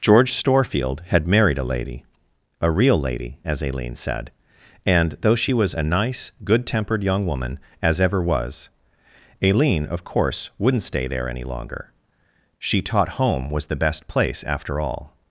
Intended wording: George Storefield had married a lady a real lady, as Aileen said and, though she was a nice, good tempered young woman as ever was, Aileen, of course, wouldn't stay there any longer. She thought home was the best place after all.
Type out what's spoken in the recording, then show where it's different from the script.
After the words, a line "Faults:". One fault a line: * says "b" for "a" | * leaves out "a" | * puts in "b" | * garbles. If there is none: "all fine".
George Storefield had married a lady a real lady, as Aileen said and, though she was a nice, good tempered young woman as ever was, Aileen, of course, wouldn't stay there any longer. She taught home was the best place after all.
Faults:
* says "taught" for "thought"